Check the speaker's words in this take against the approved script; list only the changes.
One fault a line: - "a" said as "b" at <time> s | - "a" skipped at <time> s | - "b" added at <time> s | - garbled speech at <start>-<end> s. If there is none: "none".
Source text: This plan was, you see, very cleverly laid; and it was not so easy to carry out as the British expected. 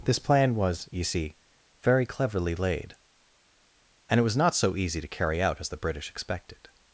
none